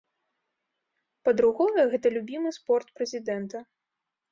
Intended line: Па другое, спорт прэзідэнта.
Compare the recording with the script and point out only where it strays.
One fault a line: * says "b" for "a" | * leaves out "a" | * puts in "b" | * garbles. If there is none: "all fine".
* puts in "гэта любімы"